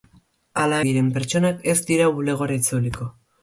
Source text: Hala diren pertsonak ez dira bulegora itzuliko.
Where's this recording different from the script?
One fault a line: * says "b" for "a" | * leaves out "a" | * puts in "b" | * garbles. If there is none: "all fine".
all fine